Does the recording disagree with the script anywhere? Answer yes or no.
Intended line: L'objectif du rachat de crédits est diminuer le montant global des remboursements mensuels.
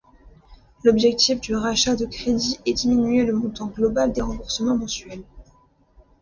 no